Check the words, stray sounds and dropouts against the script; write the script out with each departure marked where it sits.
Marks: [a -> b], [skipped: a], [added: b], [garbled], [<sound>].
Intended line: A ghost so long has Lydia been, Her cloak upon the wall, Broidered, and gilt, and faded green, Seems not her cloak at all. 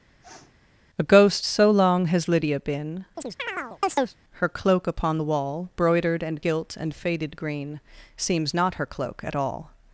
[sniff] A ghost so long has Lydia been, [chirp] Her cloak upon the wall, Broidered, and gilt, and faded green, Seems not her cloak at all.